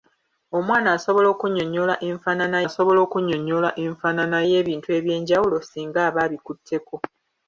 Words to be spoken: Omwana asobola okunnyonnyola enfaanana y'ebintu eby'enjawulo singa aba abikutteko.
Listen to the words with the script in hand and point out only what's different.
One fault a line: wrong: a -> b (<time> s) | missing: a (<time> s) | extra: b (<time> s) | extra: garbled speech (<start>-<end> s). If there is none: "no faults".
extra: asobola okunnyonnyola enfaanana (2.7 s)